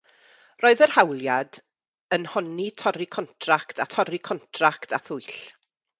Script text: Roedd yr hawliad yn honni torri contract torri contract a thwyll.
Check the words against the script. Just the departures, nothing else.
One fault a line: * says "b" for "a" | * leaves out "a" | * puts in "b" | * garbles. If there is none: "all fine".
all fine